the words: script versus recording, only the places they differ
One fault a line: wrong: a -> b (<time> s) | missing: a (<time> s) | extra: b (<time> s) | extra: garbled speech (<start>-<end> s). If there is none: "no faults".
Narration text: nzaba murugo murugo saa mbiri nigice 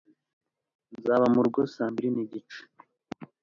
missing: murugo (1.6 s)